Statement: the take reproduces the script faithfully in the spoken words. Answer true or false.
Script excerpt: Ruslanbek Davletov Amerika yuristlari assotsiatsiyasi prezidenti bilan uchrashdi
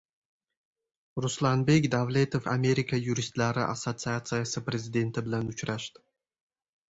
true